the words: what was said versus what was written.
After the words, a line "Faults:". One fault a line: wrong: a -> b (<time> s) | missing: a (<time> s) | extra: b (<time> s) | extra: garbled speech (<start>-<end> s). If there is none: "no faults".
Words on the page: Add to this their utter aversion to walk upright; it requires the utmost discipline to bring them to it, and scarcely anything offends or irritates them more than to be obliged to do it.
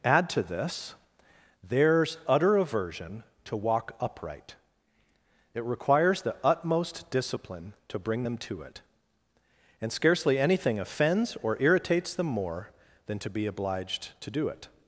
Add to this theirs utter aversion to walk upright; it requires the utmost discipline to bring them to it, and scarcely anything offends or irritates them more than to be obliged to do it.
Faults:
wrong: their -> theirs (1.6 s)